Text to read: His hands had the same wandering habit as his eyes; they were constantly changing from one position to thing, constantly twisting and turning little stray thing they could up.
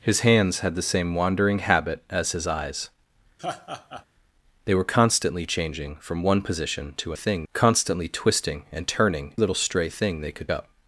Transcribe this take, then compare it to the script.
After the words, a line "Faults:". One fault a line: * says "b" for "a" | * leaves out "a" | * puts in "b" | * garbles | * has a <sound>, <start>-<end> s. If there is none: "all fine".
His hands had the same wandering habit as his eyes; they were constantly changing from one position to thing, constantly twisting and turning little stray thing they could up.
Faults:
* has a laugh, 3.4-4.1 s